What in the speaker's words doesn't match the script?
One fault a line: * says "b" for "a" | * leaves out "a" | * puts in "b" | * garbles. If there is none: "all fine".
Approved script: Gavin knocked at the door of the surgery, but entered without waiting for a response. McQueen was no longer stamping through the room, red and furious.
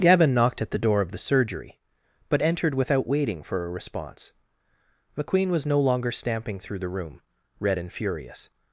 all fine